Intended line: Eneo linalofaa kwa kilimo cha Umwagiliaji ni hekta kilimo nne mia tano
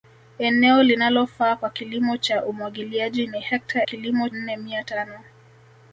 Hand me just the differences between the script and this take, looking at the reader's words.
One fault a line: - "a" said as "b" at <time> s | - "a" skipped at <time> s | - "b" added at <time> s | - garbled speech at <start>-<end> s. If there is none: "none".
none